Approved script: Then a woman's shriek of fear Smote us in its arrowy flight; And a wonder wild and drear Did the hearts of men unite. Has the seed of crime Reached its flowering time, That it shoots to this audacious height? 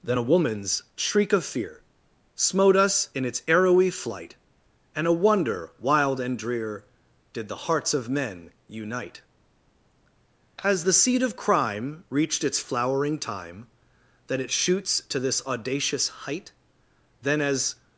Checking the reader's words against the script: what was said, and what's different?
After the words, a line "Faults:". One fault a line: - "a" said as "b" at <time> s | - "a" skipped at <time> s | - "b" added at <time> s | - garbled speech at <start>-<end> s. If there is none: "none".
Then a woman's shriek of fear Smote us in its arrowy flight; And a wonder wild and drear Did the hearts of men unite. Has the seed of crime Reached its flowering time, That it shoots to this audacious height? Then, as
Faults:
- "Then as" added at 17.2 s